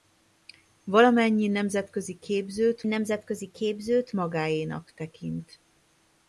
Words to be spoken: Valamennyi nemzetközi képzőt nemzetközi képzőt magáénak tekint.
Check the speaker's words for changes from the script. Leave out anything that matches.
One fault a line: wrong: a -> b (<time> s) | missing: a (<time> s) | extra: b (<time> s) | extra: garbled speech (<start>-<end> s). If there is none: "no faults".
no faults